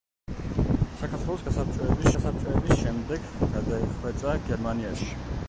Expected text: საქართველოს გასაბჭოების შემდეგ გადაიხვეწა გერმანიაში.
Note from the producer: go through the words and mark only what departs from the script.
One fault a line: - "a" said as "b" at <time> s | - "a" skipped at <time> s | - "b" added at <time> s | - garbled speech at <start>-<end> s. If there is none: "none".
- "გასაბჭოების" added at 2.2 s